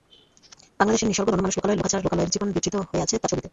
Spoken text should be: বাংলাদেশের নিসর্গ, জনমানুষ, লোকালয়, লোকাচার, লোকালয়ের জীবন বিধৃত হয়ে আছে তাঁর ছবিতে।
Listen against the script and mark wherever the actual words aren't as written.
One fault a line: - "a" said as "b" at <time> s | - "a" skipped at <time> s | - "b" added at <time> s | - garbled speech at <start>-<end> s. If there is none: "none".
none